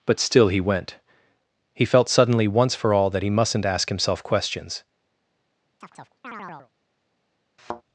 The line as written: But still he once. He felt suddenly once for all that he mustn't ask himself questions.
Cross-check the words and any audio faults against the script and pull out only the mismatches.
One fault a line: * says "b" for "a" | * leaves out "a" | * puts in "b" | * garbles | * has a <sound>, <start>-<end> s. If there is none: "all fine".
* says "went" for "once"
* has a chirp, 5.8-6.7 s
* has a thud, 7.6-7.8 s